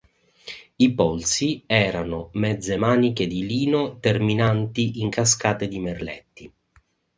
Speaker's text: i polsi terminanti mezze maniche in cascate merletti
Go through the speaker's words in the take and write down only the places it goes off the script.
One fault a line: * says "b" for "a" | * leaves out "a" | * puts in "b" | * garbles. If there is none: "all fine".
* says "erano" for "terminanti"
* puts in "di lino terminanti"
* puts in "di"